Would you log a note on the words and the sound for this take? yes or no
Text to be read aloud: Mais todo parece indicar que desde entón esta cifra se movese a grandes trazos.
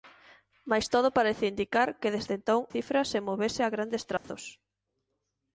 yes